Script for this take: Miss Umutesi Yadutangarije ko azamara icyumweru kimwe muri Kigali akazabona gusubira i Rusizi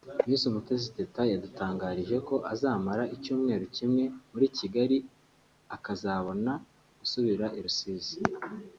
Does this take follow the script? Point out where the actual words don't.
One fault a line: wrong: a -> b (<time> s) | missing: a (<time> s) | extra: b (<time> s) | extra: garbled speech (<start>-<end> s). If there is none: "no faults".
extra: Teta (1.0 s)